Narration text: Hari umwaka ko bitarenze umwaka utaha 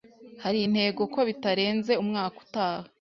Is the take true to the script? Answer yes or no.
no